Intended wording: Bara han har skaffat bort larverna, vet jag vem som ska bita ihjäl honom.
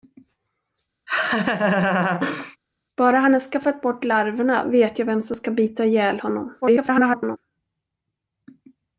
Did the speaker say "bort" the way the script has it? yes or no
yes